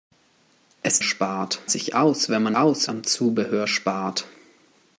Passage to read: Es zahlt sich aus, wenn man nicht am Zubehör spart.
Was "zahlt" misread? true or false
true